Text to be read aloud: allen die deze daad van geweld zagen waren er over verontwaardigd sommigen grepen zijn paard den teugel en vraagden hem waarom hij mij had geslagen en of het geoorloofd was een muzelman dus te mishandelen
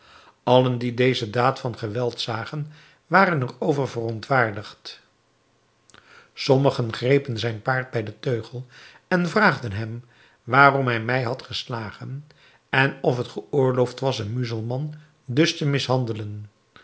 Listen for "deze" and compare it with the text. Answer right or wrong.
right